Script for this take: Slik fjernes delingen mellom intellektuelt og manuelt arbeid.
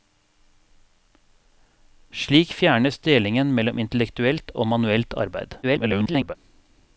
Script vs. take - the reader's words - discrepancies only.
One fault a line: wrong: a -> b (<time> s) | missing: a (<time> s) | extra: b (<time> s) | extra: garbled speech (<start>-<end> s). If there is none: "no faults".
extra: garbled speech (5.6-6.3 s)